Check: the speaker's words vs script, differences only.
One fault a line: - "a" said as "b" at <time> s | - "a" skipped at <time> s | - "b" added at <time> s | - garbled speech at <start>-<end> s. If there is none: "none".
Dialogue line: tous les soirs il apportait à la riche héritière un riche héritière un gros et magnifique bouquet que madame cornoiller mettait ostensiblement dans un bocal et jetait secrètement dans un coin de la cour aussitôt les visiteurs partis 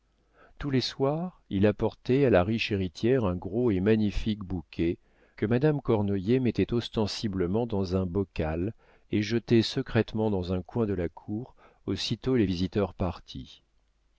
- "riche héritière un" skipped at 3.4 s